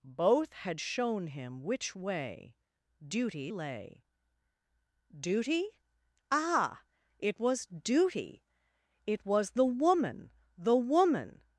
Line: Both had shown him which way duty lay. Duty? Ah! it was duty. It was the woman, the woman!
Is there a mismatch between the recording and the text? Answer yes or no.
no